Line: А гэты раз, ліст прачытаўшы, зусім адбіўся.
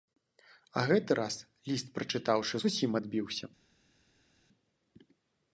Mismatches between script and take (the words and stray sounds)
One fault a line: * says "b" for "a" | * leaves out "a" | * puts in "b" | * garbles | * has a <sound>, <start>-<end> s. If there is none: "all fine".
all fine